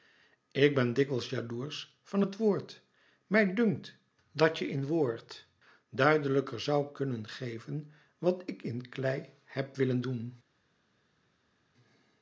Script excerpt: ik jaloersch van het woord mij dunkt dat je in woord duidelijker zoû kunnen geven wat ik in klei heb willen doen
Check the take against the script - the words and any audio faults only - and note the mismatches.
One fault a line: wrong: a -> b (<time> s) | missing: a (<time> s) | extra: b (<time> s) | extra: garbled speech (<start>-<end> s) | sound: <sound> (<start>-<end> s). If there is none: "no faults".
extra: ben dikwijls (0.8 s)